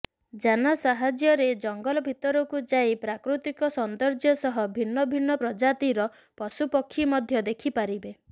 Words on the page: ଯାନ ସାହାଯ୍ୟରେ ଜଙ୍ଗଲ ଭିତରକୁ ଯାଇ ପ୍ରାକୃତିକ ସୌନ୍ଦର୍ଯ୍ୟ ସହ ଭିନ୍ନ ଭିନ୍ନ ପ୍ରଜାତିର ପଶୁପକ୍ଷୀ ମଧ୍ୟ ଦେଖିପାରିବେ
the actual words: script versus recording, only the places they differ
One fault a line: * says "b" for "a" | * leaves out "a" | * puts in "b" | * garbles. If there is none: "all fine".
all fine